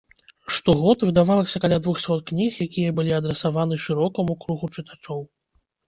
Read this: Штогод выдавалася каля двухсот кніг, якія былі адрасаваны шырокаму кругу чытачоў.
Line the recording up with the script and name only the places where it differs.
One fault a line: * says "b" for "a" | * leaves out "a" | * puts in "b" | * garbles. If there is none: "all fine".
all fine